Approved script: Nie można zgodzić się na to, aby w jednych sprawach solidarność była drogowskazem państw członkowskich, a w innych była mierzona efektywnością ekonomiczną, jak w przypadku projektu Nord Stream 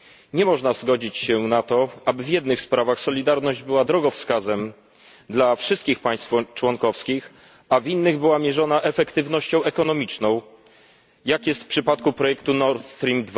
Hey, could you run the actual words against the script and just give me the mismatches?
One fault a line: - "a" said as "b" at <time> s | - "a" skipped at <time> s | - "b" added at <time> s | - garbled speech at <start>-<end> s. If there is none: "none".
- "dla wszystkich" added at 5.3 s
- "jest" added at 11.5 s